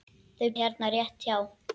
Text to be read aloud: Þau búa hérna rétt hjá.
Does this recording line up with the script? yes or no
no